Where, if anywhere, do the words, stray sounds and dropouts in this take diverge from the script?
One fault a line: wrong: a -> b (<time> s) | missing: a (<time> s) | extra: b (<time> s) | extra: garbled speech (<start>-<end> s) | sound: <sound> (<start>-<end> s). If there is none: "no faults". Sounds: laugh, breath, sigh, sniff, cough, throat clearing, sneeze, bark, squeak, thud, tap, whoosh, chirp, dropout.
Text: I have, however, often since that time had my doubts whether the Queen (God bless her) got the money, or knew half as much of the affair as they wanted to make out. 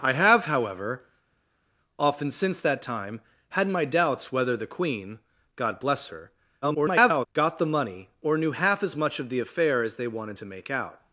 extra: garbled speech (6.6-7.3 s)